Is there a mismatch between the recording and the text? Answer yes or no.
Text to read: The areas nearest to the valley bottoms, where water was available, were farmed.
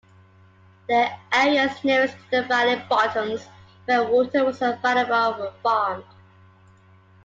no